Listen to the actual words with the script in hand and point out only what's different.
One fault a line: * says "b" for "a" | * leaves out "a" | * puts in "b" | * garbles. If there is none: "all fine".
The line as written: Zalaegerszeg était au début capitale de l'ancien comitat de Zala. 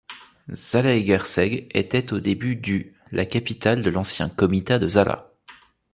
* puts in "du la"